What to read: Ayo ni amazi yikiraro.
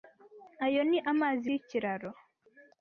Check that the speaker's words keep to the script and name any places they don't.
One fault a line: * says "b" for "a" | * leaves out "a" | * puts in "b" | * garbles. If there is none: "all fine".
all fine